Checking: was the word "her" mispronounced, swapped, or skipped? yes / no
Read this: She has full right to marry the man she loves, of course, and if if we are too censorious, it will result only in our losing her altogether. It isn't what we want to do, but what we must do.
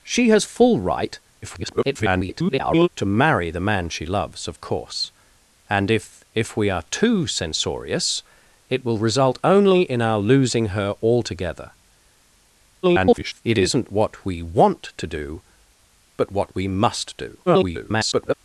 no